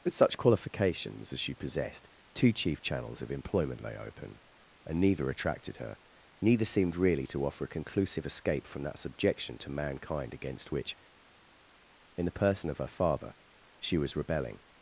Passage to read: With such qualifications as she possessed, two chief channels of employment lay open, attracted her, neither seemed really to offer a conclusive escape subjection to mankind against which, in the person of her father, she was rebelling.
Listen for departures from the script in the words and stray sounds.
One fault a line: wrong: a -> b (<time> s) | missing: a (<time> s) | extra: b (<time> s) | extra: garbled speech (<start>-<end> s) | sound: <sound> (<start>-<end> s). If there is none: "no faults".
extra: and neither (4.9 s)
extra: from that (8.6 s)